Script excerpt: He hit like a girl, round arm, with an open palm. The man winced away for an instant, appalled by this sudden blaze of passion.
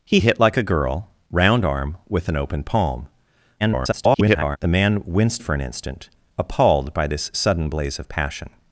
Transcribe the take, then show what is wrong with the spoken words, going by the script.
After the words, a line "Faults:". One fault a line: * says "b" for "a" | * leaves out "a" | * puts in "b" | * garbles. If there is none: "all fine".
He hit like a girl, round arm, with an open palm. [garbled] The man winced for an instant, appalled by this sudden blaze of passion.
Faults:
* garbles
* leaves out "away"